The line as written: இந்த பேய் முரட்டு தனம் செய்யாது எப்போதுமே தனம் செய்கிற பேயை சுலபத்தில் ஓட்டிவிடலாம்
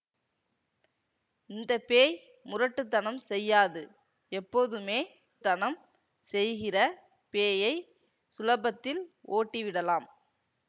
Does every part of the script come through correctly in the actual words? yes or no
yes